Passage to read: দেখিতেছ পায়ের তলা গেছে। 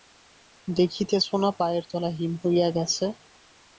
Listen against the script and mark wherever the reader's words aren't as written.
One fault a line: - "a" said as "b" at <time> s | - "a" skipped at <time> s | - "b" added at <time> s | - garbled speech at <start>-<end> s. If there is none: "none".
- "না" added at 1.4 s
- "হিম হইয়া" added at 2.2 s